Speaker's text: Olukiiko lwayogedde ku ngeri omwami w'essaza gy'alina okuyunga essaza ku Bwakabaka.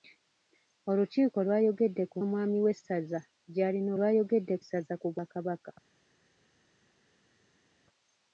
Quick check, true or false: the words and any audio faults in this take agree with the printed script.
false